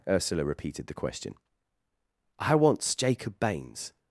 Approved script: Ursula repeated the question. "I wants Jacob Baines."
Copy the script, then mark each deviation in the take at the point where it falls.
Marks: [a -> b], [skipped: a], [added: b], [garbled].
Ursula repeated the question. "I wants Jacob Baines."